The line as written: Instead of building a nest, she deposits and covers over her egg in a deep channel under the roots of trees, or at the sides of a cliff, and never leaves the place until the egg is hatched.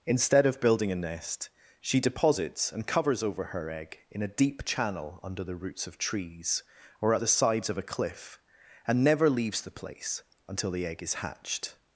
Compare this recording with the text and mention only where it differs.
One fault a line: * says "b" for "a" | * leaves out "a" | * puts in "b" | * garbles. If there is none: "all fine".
all fine